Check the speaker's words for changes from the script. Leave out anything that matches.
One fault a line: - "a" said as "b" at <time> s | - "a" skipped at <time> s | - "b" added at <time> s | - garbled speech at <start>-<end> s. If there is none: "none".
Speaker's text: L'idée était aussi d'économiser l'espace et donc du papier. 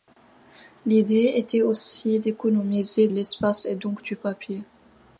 none